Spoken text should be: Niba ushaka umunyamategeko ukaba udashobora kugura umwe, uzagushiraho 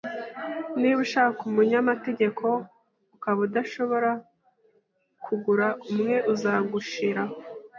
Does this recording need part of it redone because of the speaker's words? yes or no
no